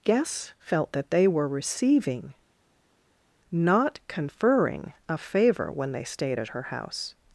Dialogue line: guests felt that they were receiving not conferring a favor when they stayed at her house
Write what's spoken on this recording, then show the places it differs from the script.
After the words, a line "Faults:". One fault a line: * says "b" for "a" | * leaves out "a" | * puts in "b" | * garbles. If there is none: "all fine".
guests felt that they were receiving not conferring a favor when they stayed at her house
Faults:
all fine